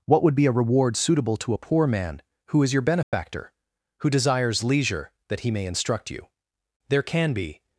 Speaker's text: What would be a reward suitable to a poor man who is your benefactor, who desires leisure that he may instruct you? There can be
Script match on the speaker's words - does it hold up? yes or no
yes